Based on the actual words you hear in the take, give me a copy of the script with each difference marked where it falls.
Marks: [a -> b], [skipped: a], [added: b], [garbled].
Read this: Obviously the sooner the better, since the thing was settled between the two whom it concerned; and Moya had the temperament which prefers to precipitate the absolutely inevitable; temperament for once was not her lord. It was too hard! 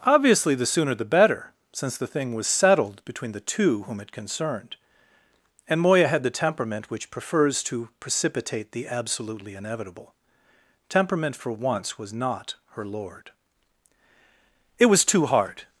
Obviously the sooner the better, since the thing was settled between the two whom it concerned; and Moya had the temperament which prefers to precipitate the absolutely inevitable; temperament for once was not her lord. It was too hard!